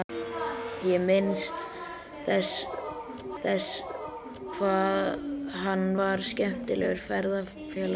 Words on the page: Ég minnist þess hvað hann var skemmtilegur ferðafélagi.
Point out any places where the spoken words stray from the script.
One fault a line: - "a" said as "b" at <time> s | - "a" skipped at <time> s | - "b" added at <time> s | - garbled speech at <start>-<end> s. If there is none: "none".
- "þess" added at 3.4 s